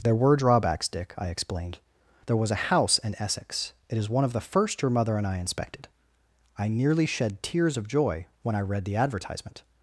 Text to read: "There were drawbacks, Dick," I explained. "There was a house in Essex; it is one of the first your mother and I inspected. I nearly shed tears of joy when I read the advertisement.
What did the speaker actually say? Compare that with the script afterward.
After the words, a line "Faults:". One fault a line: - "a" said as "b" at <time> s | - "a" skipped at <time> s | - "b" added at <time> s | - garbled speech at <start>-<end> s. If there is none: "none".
"There were drawbacks, Dick," I explained. "There was a house in Essex; it is one of the first your mother and I inspected. I nearly shed tears of joy when I read the advertisement.
Faults:
none